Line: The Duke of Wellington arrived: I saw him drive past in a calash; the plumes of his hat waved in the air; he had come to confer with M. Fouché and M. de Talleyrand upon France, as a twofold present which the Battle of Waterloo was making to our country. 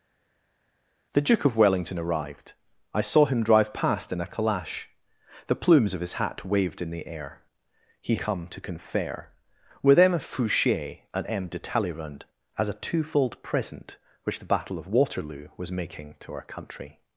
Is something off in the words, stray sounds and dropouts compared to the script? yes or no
yes